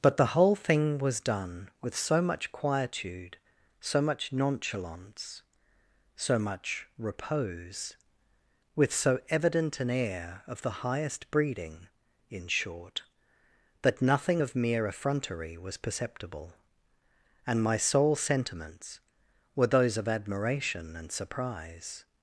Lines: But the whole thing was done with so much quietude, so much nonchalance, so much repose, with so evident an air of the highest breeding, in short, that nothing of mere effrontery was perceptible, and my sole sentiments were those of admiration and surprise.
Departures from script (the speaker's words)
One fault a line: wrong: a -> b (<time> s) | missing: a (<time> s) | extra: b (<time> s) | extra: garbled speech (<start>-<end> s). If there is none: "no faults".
no faults